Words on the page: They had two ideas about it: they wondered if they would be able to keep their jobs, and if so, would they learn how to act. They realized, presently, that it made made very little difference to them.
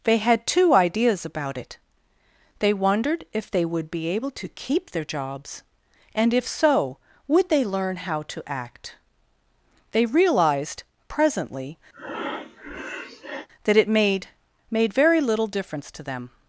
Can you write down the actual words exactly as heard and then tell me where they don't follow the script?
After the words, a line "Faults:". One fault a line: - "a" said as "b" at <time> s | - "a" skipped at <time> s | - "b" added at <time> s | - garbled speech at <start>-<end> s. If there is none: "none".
They had two ideas about it: they wondered if they would be able to keep their jobs, and if so, would they learn how to act. They realized, presently, that it made made very little difference to them.
Faults:
none